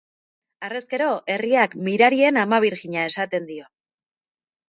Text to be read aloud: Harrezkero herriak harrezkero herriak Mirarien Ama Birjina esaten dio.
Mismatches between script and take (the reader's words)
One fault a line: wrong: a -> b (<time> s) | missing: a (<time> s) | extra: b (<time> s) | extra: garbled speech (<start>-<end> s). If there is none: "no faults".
missing: harrezkero herriak (1.7 s)